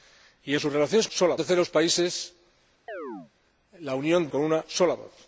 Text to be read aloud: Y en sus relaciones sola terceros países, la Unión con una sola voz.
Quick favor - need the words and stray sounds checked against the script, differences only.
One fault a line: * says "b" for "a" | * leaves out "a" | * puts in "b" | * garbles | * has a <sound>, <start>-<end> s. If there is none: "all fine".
* has a chirp, 2.9-3.3 s